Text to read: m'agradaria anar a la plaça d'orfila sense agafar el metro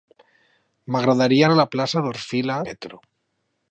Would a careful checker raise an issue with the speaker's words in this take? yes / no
yes